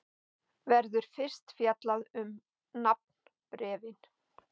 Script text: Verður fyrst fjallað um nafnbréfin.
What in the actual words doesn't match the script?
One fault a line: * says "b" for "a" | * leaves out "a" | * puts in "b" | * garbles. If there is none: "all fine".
all fine